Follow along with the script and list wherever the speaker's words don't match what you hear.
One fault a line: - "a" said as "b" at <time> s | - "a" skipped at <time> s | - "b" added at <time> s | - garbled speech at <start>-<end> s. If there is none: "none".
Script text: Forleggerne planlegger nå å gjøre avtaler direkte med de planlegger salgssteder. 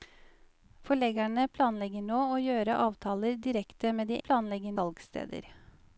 none